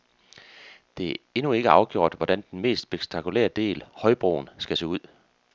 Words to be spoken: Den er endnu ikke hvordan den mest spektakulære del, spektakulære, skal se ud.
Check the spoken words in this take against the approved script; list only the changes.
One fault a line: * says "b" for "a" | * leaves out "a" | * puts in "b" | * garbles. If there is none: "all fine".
* says "Det" for "Den"
* puts in "afgjort"
* says "højbroen" for "spektakulære"